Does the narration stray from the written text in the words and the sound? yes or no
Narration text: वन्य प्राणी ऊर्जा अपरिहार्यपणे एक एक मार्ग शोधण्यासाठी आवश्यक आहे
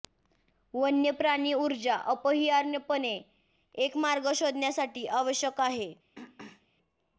yes